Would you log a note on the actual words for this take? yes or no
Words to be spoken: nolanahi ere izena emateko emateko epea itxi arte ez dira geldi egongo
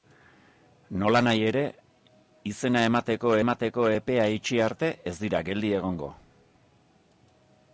no